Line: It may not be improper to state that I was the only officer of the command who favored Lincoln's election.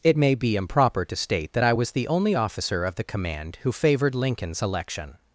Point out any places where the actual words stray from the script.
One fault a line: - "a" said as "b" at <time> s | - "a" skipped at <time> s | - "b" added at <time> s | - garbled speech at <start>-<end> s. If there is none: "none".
- "not" skipped at 0.3 s